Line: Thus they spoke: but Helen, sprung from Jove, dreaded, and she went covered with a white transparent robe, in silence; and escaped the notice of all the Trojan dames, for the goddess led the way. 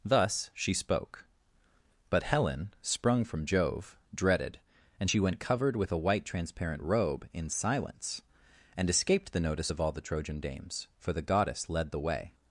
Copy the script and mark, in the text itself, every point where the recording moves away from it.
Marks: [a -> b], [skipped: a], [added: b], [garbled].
Thus [they -> she] spoke: but Helen, sprung from Jove, dreaded, and she went covered with a white transparent robe, in silence; and escaped the notice of all the Trojan dames, for the goddess led the way.